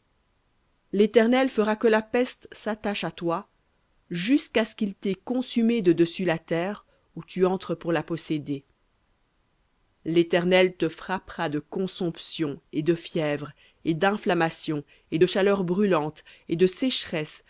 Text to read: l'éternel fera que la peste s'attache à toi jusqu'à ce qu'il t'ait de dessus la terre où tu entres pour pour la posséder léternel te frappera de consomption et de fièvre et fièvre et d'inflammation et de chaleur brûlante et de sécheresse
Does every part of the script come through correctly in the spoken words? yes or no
no